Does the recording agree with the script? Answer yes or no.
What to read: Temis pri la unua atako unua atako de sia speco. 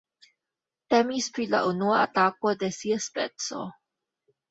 no